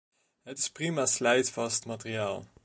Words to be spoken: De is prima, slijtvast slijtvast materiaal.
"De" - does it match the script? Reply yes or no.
no